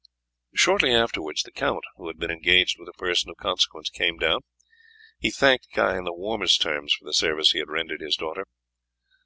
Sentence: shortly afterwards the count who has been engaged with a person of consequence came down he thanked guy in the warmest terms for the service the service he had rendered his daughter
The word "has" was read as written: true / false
false